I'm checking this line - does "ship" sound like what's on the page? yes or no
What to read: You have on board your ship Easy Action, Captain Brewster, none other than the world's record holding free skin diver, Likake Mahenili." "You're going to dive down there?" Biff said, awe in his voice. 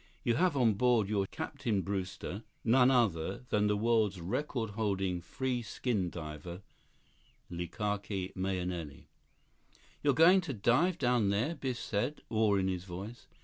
no